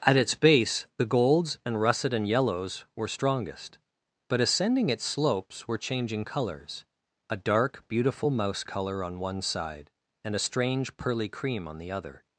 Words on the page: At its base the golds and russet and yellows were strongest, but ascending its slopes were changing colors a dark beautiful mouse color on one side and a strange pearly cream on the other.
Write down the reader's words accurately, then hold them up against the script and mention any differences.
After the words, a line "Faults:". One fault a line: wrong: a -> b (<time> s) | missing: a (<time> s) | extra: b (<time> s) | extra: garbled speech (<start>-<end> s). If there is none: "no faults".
At its base the golds and russet and yellows were strongest, but ascending its slopes were changing colors a dark beautiful mouse color on one side and a strange pearly cream on the other.
Faults:
no faults